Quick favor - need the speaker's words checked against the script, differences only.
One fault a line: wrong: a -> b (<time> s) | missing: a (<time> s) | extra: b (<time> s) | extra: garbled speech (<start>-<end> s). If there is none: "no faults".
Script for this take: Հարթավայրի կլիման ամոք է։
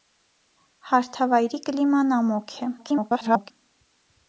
extra: garbled speech (2.8-3.5 s)